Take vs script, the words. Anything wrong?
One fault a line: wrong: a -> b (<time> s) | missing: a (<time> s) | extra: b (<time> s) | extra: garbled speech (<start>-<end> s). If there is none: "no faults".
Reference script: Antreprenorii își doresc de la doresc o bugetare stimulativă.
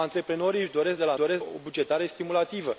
no faults